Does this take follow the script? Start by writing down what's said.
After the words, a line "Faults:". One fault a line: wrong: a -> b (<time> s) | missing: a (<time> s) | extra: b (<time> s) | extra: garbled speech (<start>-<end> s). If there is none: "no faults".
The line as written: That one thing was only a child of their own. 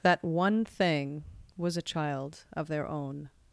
That one thing was a child of their own.
Faults:
missing: only (1.8 s)